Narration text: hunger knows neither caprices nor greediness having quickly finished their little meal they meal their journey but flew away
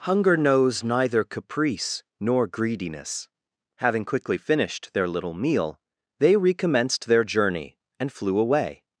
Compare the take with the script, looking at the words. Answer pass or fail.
fail